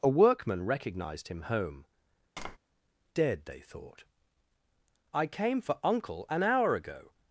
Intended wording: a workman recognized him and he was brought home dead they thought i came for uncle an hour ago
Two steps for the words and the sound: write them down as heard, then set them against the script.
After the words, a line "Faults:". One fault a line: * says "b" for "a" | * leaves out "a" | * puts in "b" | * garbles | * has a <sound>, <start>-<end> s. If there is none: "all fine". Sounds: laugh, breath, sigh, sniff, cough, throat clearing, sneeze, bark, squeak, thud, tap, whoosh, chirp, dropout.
a workman recognized him home dead they thought i came for uncle an hour ago
Faults:
* leaves out "and he was brought"
* has a tap, 2.4-2.6 s